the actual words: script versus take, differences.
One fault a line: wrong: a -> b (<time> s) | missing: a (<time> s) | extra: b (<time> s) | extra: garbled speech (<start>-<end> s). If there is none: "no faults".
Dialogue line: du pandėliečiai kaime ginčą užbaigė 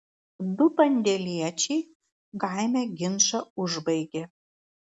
no faults